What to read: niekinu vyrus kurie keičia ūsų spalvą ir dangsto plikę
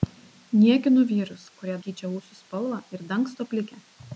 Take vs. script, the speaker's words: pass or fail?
pass